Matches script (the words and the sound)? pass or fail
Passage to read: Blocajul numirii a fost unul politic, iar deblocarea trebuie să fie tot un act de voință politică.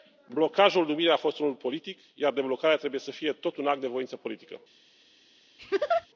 fail